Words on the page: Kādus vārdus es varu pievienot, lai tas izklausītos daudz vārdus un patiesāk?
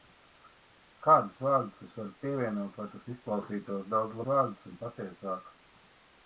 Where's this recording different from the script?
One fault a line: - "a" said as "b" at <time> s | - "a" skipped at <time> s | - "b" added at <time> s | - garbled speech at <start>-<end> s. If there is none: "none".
none